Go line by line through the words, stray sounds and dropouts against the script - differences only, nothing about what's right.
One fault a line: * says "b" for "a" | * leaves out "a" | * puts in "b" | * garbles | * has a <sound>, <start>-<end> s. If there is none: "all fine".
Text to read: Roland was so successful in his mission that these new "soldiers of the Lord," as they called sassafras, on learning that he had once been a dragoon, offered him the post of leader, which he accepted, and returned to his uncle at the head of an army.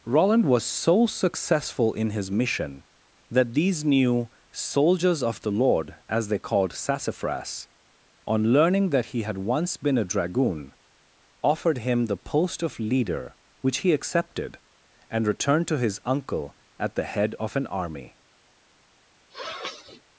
* has a sniff, 19.3-20.0 s